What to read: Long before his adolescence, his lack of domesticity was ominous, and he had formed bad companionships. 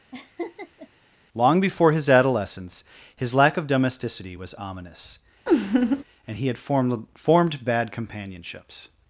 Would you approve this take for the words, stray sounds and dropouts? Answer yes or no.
no